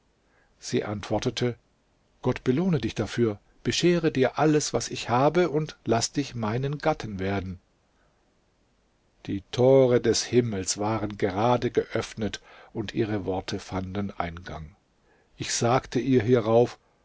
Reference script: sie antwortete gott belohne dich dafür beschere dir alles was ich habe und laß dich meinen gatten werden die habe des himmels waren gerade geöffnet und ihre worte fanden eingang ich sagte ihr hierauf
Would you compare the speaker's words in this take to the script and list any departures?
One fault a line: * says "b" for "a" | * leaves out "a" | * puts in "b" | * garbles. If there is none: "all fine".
* says "tore" for "habe"